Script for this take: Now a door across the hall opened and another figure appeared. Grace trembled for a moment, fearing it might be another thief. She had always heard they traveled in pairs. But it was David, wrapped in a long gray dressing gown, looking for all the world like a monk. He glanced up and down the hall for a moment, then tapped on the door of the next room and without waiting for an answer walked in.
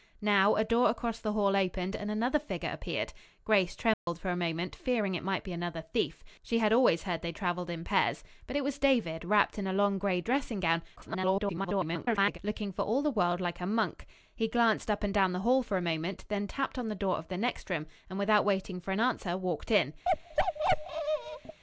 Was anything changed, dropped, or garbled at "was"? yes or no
no